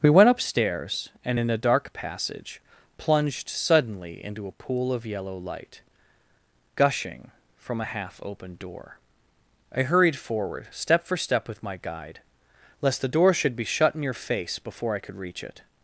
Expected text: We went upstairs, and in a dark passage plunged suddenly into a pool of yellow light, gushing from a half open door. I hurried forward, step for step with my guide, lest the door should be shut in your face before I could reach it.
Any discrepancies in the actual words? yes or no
no